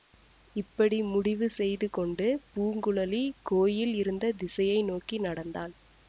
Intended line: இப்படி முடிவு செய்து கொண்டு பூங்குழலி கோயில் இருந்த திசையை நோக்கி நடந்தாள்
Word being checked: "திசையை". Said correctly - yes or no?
yes